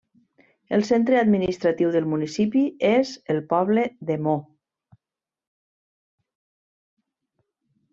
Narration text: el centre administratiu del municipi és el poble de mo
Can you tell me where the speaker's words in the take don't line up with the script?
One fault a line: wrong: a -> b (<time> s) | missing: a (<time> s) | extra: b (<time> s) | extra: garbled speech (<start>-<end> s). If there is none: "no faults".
no faults